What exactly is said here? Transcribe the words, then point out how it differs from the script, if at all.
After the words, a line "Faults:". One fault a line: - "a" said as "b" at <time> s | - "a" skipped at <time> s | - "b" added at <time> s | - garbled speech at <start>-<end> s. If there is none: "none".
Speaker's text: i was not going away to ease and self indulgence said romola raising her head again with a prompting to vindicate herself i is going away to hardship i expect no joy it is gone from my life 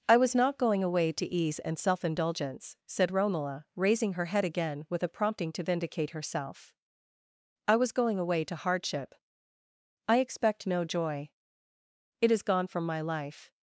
i was not going away to ease and self indulgence said romola raising her head again with a prompting to vindicate herself i was going away to hardship i expect no joy it is gone from my life
Faults:
- "is" said as "was" at 7.8 s